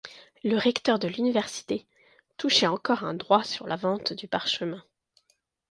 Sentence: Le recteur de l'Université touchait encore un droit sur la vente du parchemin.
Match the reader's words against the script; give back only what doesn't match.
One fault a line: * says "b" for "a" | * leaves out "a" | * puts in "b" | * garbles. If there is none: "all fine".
all fine